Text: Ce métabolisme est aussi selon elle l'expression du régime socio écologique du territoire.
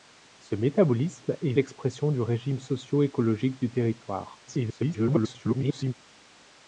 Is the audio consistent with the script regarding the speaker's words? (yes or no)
no